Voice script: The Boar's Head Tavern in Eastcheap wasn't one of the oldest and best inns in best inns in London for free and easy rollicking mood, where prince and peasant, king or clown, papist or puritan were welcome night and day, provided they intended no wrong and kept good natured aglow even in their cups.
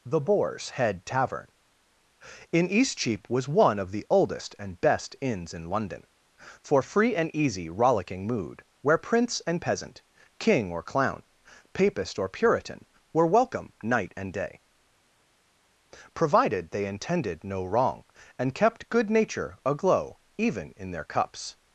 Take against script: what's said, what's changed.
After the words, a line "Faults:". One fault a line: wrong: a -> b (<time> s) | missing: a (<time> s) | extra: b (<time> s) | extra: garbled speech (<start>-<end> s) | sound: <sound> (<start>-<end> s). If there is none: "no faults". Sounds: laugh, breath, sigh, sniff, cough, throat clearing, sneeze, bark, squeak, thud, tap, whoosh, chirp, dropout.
The Boar's Head Tavern in Eastcheap was one of the oldest and best inns in London for free and easy rollicking mood, where prince and peasant, king or clown, papist or puritan were welcome night and day, provided they intended no wrong and kept good nature aglow even in their cups.
Faults:
wrong: wasn't -> was (3.3 s)
missing: best inns in (5.7 s)
wrong: natured -> nature (19.1 s)